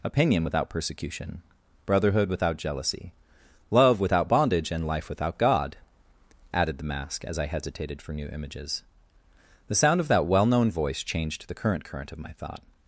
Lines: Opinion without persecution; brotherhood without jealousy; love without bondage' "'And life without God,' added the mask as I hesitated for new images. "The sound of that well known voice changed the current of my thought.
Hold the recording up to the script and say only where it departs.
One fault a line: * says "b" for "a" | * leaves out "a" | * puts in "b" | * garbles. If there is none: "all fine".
* puts in "current"